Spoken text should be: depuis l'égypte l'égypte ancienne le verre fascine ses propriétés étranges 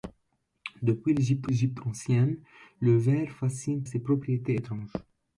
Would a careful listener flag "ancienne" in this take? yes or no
no